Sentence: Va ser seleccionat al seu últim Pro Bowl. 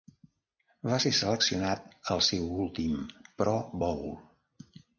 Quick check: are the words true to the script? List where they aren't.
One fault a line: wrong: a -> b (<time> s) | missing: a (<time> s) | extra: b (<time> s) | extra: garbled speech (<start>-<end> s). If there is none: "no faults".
no faults